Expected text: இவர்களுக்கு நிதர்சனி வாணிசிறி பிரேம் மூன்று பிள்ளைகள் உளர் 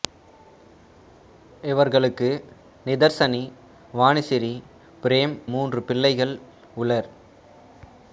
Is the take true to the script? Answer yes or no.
yes